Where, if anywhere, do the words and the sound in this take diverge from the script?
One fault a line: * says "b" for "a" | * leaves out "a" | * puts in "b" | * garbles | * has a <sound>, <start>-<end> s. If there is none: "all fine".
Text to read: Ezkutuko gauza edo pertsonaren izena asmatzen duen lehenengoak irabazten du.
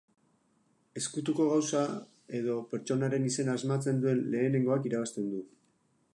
all fine